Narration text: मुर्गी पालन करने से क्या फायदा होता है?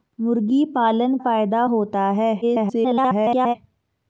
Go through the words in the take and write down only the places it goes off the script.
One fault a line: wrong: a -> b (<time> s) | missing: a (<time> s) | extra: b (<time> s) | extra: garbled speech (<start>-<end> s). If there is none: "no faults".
missing: करने से क्या (1.2 s)
extra: garbled speech (2.4-3.6 s)